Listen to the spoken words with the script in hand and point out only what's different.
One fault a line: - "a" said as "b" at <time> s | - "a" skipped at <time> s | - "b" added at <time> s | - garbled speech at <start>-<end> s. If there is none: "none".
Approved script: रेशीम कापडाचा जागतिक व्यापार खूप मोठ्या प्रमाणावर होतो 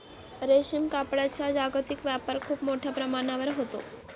none